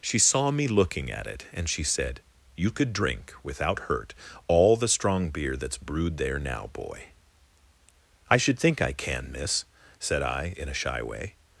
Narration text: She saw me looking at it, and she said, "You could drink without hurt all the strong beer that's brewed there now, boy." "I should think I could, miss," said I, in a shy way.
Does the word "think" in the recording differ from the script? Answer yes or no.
no